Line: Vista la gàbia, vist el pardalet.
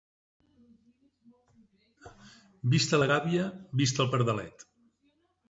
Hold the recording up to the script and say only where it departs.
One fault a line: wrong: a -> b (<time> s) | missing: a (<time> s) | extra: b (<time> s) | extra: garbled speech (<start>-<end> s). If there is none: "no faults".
no faults